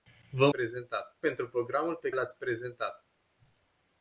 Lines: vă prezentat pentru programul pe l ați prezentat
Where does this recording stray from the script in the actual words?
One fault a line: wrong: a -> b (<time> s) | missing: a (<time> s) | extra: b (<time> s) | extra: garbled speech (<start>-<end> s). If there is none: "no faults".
no faults